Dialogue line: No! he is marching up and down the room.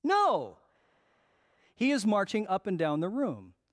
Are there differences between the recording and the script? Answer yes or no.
no